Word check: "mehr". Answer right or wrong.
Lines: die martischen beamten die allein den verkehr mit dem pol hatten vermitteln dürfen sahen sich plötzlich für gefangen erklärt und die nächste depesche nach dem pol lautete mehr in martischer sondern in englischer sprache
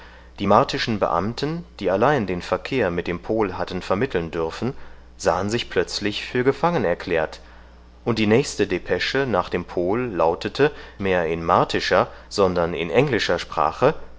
right